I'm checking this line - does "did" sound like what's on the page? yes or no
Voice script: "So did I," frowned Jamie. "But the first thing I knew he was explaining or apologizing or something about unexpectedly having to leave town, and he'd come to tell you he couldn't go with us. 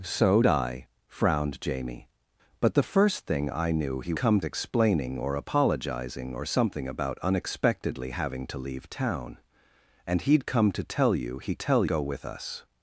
no